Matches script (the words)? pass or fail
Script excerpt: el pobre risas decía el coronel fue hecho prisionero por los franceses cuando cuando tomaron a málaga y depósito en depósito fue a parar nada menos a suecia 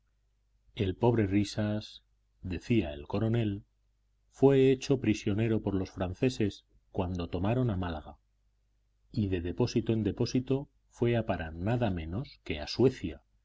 fail